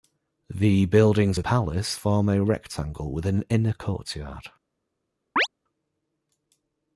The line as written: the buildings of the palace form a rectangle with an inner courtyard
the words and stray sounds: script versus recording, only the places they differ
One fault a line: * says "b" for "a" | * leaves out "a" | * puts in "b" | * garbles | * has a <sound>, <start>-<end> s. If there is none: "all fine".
* leaves out "the"
* has a chirp, 5.4-5.5 s